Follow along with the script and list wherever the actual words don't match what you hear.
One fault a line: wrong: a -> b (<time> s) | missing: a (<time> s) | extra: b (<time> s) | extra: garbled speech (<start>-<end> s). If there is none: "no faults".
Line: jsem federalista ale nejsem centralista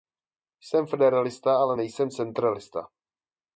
no faults